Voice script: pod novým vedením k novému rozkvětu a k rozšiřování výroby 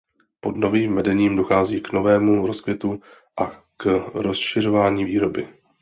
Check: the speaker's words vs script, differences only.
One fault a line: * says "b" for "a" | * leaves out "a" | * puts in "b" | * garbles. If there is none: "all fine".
* puts in "dochází"